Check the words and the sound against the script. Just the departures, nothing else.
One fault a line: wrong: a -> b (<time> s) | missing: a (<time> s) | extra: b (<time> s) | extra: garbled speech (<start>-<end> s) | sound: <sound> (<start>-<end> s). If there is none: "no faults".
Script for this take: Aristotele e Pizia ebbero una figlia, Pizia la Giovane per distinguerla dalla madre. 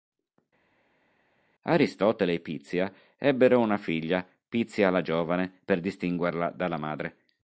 no faults